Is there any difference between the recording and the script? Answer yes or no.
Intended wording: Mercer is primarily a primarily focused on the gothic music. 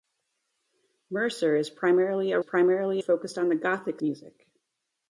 no